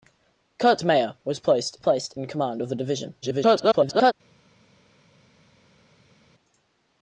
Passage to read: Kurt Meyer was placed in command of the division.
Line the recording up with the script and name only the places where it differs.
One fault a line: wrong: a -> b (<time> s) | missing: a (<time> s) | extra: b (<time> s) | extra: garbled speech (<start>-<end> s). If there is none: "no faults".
extra: placed (1.8 s)
extra: garbled speech (3.2-4.1 s)